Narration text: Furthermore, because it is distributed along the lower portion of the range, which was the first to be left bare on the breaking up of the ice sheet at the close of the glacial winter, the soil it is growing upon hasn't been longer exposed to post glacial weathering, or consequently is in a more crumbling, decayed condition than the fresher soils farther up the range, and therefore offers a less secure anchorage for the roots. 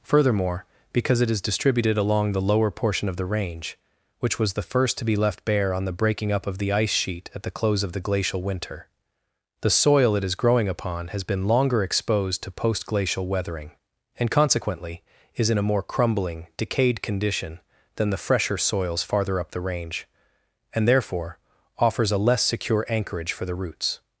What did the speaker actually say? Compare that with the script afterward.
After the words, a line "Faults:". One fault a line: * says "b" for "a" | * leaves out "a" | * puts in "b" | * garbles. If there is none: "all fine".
Furthermore, because it is distributed along the lower portion of the range, which was the first to be left bare on the breaking up of the ice sheet at the close of the glacial winter, the soil it is growing upon has been longer exposed to post glacial weathering, and consequently is in a more crumbling, decayed condition than the fresher soils farther up the range, and therefore offers a less secure anchorage for the roots.
Faults:
* says "has" for "hasn't"
* says "and" for "or"